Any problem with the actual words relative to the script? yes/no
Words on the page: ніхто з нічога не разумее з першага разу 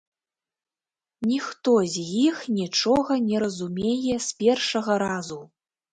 yes